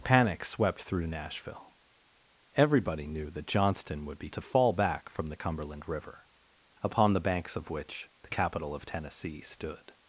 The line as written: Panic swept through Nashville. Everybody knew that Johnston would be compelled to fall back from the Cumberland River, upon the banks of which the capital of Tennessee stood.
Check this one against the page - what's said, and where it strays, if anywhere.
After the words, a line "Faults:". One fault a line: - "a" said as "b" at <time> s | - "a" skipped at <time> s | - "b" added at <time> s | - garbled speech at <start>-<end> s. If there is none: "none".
Panic swept through Nashville. Everybody knew that Johnston would be to fall back from the Cumberland River, upon the banks of which the capital of Tennessee stood.
Faults:
- "compelled" skipped at 4.3 s